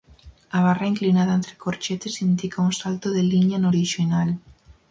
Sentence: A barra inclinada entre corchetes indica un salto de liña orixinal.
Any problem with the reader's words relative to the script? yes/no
yes